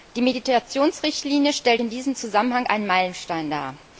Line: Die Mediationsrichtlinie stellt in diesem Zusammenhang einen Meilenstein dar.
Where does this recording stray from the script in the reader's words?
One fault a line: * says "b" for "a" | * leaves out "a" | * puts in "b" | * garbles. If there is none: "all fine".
all fine